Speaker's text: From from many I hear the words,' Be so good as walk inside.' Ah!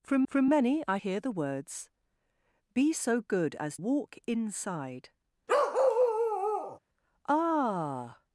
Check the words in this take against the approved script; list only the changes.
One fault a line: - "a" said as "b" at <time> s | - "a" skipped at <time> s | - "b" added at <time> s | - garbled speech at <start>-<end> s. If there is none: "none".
none